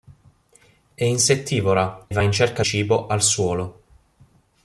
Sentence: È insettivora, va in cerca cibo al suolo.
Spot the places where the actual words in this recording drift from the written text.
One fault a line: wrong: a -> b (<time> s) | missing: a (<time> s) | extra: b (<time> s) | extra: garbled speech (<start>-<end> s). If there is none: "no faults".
no faults